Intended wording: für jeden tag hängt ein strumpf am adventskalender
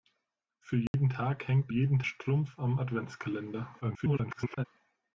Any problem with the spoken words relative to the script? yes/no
yes